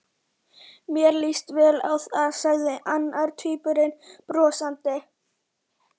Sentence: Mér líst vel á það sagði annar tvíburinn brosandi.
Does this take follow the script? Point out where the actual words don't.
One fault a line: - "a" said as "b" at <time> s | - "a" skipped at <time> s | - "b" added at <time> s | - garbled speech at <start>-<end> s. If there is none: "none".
none